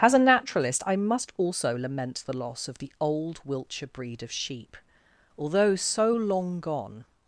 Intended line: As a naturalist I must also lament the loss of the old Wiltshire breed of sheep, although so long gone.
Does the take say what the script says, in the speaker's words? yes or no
yes